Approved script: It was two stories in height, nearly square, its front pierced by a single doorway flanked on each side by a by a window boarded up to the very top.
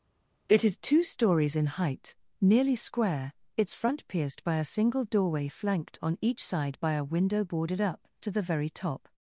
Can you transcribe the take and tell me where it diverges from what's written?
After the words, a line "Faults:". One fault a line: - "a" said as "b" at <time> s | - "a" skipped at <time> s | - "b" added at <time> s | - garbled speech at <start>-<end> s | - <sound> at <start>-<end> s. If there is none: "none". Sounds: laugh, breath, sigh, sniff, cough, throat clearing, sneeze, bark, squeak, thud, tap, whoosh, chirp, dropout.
It is two stories in height, nearly square, its front pierced by a single doorway flanked on each side by a window boarded up to the very top.
Faults:
- "was" said as "is" at 0.6 s
- "by a" skipped at 7.1 s